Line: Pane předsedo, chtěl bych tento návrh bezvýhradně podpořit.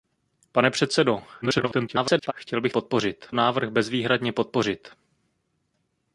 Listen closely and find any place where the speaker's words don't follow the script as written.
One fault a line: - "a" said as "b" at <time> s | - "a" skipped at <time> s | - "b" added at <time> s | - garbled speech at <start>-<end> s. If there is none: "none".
- garbled speech at 1.4-2.3 s
- "tento" said as "podpořit" at 2.7 s